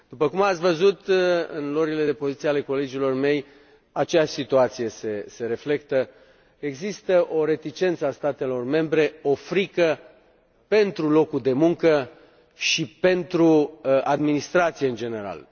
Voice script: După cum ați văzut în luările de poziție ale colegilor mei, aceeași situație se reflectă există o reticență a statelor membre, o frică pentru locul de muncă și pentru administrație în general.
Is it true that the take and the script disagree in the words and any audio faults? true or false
false